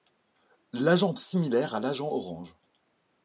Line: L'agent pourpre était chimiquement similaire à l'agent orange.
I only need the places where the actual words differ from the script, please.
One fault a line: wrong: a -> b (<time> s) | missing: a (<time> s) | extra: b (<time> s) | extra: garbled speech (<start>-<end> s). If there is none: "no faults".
missing: pourpre était chimiquement (1.1 s)